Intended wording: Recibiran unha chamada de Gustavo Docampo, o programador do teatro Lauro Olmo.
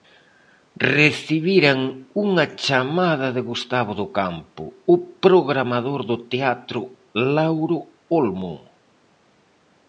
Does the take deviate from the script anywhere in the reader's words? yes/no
no